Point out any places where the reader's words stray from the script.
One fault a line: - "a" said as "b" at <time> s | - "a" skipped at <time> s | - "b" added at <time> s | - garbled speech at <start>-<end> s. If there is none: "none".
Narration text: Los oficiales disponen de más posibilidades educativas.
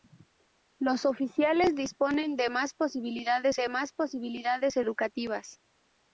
- "de más posibilidades" added at 3.5 s